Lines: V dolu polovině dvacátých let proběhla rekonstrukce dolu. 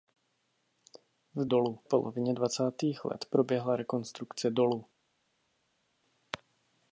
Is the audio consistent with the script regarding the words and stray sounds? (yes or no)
yes